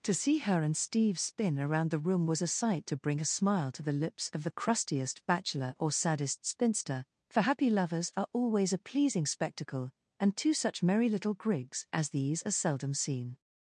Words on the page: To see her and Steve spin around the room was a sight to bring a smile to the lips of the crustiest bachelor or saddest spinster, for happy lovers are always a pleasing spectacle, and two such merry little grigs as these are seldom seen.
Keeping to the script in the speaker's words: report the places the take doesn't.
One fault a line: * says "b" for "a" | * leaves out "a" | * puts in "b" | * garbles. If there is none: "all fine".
all fine